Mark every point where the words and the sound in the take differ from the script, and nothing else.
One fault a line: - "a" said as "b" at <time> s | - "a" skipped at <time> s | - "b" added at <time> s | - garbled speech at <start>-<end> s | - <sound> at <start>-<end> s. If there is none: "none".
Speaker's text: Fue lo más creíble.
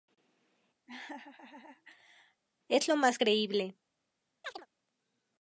- laugh at 0.9-2.4 s
- "Fue" said as "Es" at 2.7 s
- chirp at 4.4-4.7 s